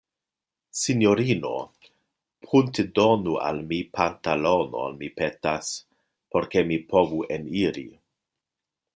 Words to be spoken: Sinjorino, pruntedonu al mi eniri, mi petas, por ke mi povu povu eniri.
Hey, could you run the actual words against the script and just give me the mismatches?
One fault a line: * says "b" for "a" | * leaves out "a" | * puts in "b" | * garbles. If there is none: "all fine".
* says "pantalonon" for "eniri"
* leaves out "povu"